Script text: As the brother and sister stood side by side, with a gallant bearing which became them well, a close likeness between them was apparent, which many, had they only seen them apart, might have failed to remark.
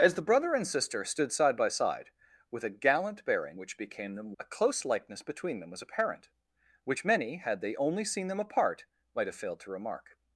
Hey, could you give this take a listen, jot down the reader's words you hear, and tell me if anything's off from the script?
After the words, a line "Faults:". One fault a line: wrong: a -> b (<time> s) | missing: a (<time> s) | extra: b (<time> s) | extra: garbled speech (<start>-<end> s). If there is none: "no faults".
As the brother and sister stood side by side, with a gallant bearing which became them a close likeness between them was apparent, which many, had they only seen them apart, might have failed to remark.
Faults:
missing: well (4.3 s)